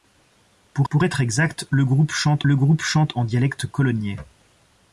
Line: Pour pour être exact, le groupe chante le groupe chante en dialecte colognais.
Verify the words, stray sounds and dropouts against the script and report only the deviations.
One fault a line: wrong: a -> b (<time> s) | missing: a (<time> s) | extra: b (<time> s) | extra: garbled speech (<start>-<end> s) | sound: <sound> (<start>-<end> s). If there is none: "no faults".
no faults